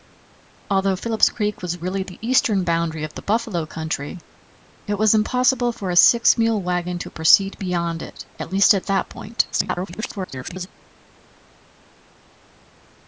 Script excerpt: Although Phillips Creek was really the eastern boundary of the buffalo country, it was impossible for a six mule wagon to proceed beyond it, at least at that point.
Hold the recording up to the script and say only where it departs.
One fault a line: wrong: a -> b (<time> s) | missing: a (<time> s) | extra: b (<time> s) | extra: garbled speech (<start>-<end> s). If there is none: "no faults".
extra: garbled speech (9.5-10.7 s)